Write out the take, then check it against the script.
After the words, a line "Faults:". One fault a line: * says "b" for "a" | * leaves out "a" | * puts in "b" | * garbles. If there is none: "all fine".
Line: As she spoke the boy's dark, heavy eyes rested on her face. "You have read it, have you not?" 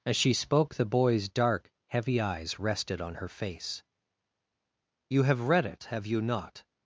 As she spoke the boy's dark, heavy eyes rested on her face. "You have read it, have you not?"
Faults:
all fine